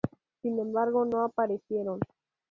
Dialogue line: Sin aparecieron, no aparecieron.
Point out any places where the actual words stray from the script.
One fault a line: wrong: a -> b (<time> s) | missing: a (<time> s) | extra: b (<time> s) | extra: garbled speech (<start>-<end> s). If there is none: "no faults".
wrong: aparecieron -> embargo (0.6 s)